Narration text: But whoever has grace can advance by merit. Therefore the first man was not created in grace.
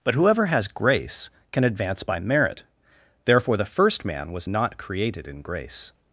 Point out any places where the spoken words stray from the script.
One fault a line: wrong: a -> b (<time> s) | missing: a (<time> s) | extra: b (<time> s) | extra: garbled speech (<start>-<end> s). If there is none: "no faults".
no faults